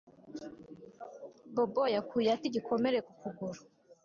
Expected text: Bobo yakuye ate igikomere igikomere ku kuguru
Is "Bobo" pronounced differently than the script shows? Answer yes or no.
no